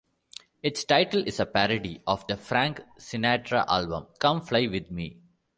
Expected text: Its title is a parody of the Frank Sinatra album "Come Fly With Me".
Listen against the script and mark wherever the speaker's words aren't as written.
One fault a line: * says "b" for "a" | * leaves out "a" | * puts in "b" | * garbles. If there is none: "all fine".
all fine